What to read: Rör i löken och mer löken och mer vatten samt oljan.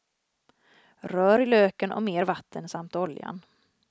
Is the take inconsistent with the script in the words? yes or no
yes